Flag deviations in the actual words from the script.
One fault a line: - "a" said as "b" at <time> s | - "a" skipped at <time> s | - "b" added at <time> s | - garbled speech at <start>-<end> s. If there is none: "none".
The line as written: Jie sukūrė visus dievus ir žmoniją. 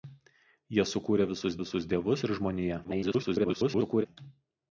- "visus" added at 1.6 s
- garbled speech at 2.8-4.1 s